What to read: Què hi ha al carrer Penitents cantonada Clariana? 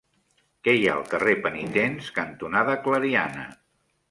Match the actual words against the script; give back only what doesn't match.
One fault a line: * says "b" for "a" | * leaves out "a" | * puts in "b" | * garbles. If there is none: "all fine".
all fine